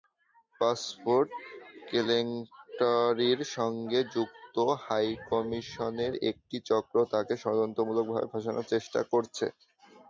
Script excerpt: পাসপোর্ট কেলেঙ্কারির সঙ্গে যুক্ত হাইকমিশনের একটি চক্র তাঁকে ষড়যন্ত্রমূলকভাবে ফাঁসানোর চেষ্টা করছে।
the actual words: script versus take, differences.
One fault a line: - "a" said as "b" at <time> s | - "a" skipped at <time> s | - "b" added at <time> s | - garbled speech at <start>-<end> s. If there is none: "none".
none